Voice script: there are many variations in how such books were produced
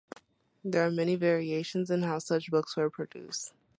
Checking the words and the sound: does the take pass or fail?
pass